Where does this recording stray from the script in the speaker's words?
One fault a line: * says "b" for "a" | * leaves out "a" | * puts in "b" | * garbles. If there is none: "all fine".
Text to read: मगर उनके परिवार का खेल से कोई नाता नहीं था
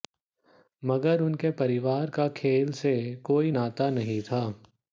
all fine